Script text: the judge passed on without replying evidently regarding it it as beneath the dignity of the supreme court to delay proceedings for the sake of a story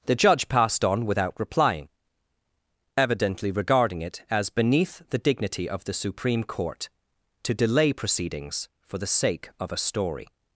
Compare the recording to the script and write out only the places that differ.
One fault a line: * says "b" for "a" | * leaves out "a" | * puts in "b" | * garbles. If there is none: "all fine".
* leaves out "it"